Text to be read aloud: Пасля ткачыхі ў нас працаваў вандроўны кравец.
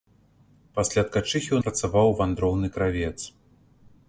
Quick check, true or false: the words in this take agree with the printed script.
false